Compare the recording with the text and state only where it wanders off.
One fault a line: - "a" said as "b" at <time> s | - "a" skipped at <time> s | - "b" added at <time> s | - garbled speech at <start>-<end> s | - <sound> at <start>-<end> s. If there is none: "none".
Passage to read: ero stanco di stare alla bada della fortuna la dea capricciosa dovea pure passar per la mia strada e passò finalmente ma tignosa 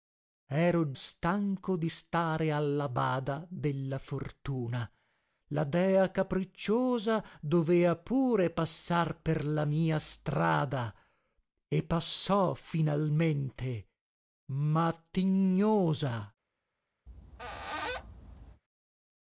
- squeak at 17.1-18.6 s